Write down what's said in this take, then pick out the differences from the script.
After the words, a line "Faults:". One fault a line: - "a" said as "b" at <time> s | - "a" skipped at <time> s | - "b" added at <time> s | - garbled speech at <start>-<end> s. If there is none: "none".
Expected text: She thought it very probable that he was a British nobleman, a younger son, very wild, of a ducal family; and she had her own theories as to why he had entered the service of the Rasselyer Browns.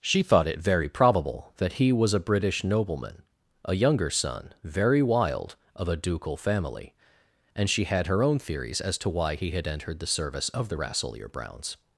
She thought it very probable that he was a British nobleman, a younger son, very wild, of a ducal family; and she had her own theories as to why he had entered the service of the Rasselyer Browns.
Faults:
none